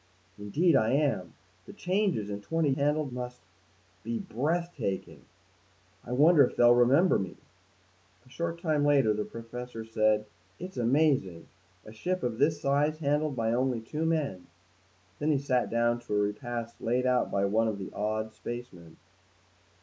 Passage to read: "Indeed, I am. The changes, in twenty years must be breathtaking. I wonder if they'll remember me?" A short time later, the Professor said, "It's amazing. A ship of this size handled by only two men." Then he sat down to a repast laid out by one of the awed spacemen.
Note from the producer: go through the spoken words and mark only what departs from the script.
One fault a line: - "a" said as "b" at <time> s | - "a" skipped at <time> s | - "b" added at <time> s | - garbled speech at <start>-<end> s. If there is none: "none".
- "years" said as "handled" at 2.7 s